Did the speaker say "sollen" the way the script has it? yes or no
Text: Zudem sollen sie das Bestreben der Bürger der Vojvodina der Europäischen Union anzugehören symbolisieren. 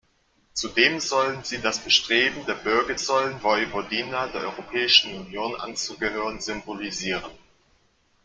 yes